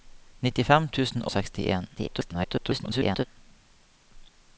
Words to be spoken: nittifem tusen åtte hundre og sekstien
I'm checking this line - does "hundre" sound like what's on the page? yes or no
no